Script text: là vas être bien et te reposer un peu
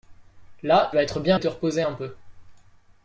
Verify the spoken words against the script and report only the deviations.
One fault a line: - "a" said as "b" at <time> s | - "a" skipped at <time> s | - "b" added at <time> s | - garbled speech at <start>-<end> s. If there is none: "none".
none